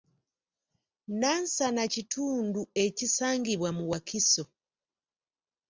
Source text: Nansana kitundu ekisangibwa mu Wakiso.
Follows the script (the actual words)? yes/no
yes